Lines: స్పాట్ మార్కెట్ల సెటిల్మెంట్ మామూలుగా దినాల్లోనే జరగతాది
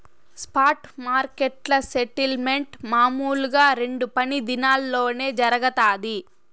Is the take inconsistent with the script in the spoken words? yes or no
yes